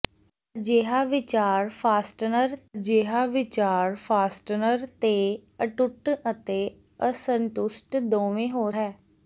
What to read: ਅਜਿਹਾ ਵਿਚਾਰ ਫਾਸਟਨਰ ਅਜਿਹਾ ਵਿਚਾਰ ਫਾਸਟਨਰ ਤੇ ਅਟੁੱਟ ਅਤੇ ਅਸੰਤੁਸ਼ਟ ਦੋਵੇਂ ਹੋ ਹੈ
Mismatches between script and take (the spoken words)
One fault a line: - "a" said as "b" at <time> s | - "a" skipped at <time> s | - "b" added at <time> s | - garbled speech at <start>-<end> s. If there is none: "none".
none